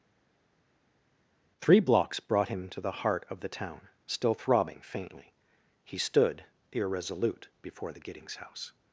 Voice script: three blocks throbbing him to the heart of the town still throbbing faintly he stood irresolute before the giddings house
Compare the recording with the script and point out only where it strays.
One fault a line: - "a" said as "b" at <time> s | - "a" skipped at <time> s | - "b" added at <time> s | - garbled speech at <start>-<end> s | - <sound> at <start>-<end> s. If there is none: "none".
- "throbbing" said as "brought" at 2.2 s